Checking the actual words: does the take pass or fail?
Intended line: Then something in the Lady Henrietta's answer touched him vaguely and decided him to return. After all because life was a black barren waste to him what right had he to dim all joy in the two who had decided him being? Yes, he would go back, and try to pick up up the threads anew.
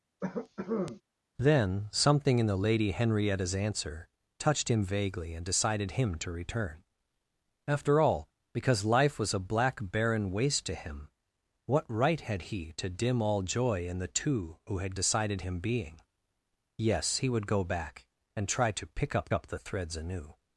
pass